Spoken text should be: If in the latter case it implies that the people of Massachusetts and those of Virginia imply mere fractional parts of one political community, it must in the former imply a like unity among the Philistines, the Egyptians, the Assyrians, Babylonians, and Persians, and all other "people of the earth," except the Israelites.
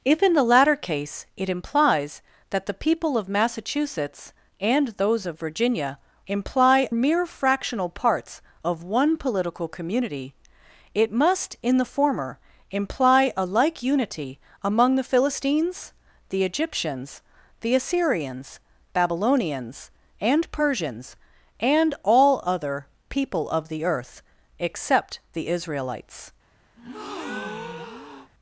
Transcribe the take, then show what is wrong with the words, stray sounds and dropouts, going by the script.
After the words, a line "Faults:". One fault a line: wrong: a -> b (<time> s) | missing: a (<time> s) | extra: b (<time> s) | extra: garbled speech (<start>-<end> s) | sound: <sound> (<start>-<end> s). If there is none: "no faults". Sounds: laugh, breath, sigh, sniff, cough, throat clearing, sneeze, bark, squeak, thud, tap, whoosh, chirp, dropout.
If in the latter case it implies that the people of Massachusetts and those of Virginia imply mere fractional parts of one political community, it must in the former imply a like unity among the Philistines, the Egyptians, the Assyrians, Babylonians, and Persians, and all other "people of the earth," except the Israelites.
Faults:
sound: breath (26.8-28.3 s)